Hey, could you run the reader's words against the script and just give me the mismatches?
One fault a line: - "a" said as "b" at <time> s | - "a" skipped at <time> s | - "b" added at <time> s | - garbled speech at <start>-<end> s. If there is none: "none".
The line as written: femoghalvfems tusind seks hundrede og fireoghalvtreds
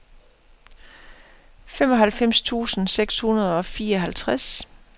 none